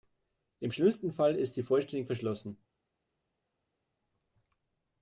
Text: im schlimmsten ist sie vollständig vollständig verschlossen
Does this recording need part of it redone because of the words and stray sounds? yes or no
yes